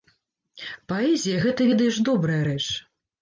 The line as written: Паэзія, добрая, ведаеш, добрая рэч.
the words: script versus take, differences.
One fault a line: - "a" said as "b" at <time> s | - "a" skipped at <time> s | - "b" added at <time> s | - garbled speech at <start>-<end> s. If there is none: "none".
- "добрая" said as "гэта" at 1.4 s